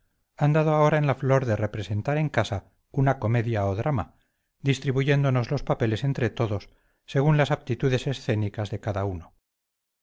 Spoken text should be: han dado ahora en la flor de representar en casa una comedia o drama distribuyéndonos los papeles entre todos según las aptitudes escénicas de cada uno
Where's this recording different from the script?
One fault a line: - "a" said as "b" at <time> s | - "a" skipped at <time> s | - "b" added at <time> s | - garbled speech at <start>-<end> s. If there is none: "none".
none